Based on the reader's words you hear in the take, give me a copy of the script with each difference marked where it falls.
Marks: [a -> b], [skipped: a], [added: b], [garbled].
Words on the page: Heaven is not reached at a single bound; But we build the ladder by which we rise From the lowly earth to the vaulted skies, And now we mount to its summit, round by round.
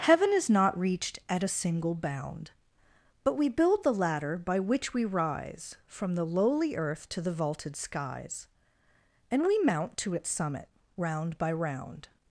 Heaven is not reached at a single bound; But we build the ladder by which we rise From the lowly earth to the vaulted skies, And [skipped: now] we mount to its summit, round by round.